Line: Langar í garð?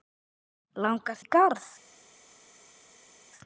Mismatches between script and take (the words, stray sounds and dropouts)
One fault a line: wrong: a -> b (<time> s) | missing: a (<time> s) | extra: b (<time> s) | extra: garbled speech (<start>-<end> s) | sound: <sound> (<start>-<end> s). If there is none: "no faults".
no faults